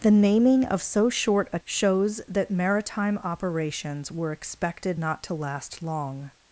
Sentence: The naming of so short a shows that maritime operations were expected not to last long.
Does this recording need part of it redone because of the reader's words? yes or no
no